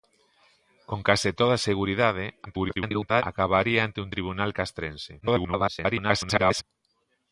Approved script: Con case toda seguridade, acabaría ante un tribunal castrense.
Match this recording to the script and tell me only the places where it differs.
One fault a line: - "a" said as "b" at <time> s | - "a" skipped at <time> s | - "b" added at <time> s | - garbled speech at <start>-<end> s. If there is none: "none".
- garbled speech at 2.4-3.2 s
- garbled speech at 5.2-6.6 s